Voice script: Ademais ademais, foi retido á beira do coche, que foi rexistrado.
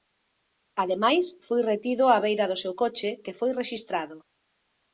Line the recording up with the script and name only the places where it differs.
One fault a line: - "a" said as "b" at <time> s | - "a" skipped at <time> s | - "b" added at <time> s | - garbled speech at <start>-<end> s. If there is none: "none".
- "ademais" skipped at 1.2 s
- "seu" added at 2.6 s